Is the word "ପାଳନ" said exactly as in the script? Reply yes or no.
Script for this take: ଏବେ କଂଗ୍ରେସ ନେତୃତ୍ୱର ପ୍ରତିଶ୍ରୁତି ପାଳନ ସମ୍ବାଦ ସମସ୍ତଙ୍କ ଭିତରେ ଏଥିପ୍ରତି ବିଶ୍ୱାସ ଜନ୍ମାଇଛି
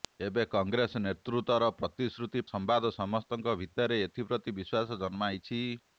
no